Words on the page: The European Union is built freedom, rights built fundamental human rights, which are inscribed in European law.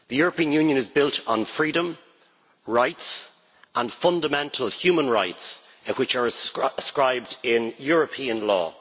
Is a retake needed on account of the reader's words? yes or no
yes